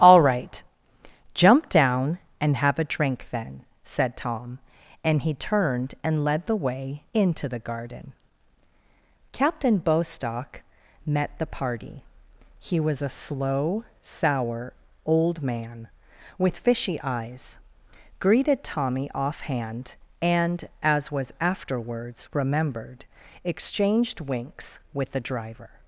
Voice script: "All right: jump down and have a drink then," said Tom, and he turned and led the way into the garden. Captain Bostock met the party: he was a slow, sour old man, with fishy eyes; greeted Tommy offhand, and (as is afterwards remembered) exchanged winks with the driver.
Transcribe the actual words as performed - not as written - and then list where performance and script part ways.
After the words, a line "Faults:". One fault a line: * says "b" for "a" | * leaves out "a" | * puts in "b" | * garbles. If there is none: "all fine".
"All right: jump down and have a drink then," said Tom, and he turned and led the way into the garden. Captain Bostock met the party: he was a slow, sour old man, with fishy eyes; greeted Tommy offhand, and (as was afterwards remembered) exchanged winks with the driver.
Faults:
* says "was" for "is"